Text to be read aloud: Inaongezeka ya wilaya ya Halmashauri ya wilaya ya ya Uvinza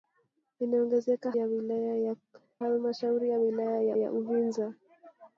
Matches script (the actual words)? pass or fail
pass